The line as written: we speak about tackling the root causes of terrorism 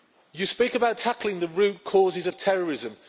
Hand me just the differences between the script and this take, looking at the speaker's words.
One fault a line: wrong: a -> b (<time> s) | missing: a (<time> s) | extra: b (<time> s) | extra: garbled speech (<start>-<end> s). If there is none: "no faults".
wrong: we -> you (0.3 s)